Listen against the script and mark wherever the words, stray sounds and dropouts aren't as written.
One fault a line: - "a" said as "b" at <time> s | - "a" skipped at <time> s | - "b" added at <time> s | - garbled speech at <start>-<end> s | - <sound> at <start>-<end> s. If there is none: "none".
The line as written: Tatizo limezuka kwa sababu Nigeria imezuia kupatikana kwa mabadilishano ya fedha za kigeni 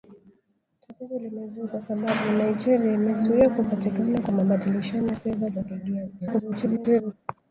- "kwa" skipped at 1.8 s
- garbled speech at 6.2-7.1 s